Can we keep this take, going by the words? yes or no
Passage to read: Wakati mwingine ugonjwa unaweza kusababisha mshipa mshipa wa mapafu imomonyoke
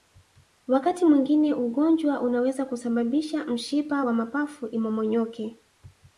no